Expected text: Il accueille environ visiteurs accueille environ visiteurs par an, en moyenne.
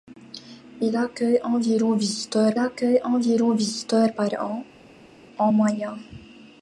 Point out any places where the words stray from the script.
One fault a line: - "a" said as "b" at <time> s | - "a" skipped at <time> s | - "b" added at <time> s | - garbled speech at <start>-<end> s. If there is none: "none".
none